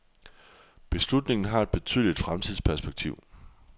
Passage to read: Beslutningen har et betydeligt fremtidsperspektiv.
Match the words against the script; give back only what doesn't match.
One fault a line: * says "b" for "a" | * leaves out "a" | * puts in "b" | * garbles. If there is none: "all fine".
all fine